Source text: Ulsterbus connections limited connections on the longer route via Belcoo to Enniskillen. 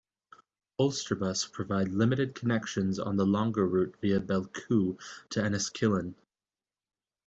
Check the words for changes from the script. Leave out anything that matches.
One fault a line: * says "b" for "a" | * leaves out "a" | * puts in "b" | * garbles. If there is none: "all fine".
* says "provide" for "connections"